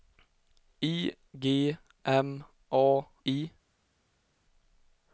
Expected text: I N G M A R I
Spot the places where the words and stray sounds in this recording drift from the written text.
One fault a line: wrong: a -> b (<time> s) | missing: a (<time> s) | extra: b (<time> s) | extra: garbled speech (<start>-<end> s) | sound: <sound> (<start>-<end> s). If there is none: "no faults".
missing: N (1.1 s)
missing: R (3.1 s)